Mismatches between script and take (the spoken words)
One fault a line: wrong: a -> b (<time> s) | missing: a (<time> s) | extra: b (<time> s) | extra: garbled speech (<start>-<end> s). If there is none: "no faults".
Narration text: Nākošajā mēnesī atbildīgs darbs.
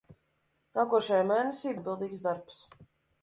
no faults